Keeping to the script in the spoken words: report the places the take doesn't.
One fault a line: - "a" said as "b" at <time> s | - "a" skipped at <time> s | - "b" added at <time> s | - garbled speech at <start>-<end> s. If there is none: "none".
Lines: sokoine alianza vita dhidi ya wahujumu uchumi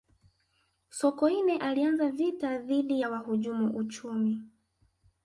none